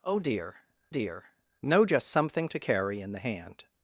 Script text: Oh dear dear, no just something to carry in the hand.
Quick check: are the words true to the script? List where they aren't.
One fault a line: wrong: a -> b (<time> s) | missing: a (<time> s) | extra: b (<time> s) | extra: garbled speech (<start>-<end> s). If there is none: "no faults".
no faults